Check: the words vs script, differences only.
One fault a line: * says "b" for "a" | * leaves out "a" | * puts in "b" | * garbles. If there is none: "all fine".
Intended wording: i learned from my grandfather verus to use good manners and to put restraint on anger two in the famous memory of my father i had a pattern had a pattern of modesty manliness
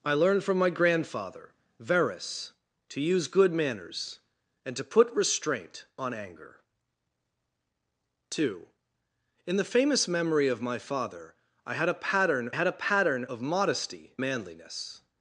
all fine